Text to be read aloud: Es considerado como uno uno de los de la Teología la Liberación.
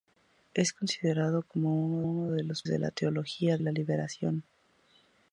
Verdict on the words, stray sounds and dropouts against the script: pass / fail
pass